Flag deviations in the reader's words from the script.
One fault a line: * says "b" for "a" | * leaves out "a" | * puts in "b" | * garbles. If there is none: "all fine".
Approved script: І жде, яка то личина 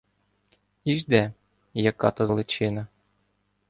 all fine